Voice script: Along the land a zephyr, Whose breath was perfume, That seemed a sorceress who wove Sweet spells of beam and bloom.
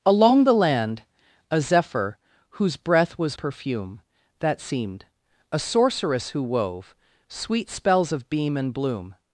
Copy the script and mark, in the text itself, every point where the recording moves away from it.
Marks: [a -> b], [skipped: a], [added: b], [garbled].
Along the land a zephyr, Whose breath was perfume, That seemed a sorceress who wove Sweet spells of beam and bloom.